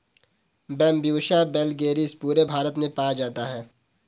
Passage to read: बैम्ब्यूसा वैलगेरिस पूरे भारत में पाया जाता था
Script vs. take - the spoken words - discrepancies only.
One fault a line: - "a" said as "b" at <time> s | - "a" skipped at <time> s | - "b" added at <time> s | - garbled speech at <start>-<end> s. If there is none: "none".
- "था" said as "है" at 3.5 s